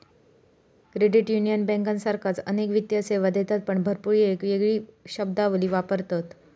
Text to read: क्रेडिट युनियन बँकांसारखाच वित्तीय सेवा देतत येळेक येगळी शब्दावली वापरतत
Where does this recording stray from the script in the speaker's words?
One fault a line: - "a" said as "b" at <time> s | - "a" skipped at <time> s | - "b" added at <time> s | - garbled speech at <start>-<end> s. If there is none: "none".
- "अनेक" added at 2.4 s
- "पण भरपूर" added at 3.7 s